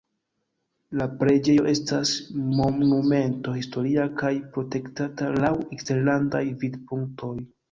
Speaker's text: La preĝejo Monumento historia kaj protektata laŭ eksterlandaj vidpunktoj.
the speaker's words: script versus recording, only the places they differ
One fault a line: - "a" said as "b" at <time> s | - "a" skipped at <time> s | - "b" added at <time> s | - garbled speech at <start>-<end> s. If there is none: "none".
- "estas" added at 1.7 s